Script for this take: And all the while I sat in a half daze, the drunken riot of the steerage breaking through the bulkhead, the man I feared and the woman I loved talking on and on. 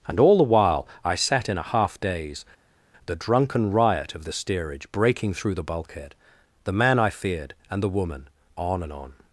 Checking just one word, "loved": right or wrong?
wrong